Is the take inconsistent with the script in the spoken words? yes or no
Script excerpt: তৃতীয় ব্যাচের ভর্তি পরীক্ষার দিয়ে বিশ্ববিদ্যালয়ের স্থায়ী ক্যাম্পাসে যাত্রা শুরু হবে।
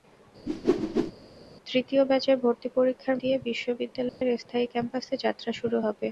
no